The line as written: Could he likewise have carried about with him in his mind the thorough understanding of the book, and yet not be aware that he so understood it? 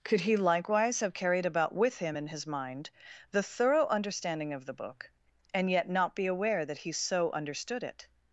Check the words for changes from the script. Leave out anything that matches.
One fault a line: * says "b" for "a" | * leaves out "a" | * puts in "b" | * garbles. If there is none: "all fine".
all fine